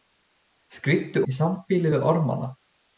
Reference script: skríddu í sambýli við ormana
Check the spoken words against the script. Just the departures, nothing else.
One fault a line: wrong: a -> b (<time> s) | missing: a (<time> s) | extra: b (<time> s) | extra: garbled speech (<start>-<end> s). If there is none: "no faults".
no faults